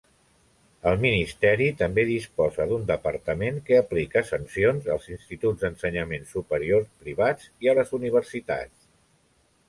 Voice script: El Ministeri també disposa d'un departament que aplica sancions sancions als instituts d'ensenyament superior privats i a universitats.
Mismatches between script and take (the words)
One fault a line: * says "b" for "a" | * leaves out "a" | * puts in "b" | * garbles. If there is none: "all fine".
* leaves out "sancions"
* puts in "les"